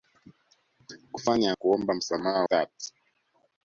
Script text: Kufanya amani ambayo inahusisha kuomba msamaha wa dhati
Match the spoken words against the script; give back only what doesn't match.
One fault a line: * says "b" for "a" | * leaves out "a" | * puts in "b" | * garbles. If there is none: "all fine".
* leaves out "amani ambayo inahusisha"
* leaves out "wa"